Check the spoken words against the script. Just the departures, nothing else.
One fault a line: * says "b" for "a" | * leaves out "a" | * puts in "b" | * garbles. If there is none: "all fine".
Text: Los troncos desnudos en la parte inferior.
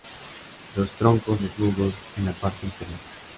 all fine